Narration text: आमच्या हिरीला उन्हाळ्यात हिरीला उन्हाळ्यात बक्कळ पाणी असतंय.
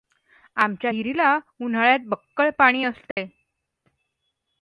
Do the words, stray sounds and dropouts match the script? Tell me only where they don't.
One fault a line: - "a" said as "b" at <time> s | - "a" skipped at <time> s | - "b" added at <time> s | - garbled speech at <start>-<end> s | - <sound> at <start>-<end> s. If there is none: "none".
- "हिरीला उन्हाळ्यात" skipped at 2.0 s
- dropout at 3.1-3.2 s